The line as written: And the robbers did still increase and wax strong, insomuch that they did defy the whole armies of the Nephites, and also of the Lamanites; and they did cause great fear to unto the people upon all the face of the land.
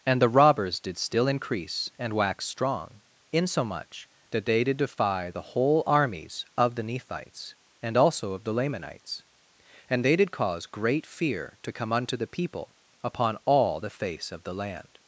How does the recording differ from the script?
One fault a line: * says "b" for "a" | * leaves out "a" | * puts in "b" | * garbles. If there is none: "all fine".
* puts in "come"